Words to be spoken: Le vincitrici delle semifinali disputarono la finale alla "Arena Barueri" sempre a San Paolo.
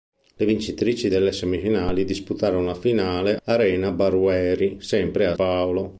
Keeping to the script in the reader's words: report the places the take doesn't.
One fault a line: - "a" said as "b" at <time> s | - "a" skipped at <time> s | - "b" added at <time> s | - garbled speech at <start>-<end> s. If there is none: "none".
- "alla" skipped at 3.4 s
- "San" skipped at 5.3 s